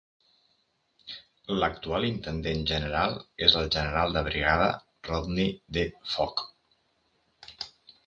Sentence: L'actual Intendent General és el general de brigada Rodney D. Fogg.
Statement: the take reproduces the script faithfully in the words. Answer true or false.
true